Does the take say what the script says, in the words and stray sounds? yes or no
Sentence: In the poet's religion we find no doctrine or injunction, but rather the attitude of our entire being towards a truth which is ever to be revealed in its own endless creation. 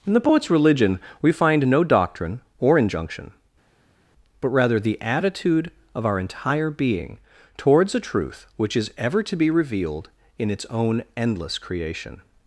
yes